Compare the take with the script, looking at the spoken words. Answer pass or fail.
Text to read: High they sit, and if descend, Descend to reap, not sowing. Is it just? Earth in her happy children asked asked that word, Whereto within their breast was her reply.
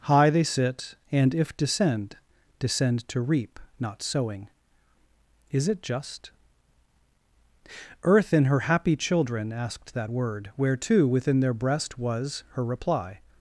fail